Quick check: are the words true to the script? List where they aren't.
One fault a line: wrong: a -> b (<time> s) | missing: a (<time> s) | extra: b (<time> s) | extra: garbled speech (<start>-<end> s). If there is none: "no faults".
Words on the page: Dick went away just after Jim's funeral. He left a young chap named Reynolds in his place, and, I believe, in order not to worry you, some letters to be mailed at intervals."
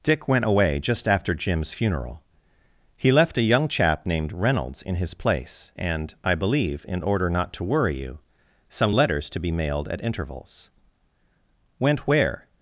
extra: Went where (11.8 s)